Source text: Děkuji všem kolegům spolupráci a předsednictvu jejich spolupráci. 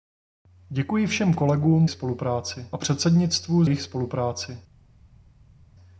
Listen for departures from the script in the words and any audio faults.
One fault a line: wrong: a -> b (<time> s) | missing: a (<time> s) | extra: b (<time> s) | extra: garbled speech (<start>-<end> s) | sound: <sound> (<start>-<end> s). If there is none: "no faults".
no faults